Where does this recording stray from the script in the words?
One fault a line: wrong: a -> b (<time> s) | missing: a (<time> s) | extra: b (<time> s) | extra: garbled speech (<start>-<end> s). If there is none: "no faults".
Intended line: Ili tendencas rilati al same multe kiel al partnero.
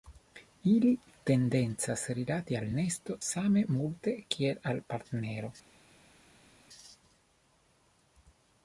extra: nesto (2.8 s)